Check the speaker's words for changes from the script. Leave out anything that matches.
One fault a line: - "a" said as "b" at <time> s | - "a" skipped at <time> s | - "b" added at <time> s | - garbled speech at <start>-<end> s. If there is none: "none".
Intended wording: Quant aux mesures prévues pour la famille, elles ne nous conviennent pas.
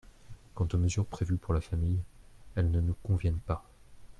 none